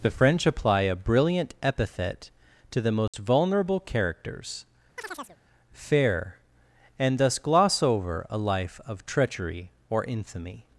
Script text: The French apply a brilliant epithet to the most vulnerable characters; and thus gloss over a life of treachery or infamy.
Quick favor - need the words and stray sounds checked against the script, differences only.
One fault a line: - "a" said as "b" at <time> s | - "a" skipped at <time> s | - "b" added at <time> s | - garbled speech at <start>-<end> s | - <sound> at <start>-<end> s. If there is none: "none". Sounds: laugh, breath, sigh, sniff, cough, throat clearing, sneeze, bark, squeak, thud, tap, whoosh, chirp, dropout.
- dropout at 3.1-3.1 s
- chirp at 5.0-5.4 s
- "fair" added at 5.7 s